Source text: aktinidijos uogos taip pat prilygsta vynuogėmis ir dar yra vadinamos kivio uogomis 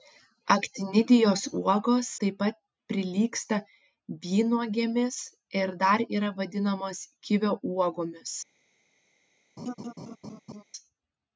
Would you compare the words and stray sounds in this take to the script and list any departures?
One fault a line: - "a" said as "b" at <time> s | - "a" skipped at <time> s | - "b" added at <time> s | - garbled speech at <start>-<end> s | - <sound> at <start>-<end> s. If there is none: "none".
- laugh at 9.6-10.6 s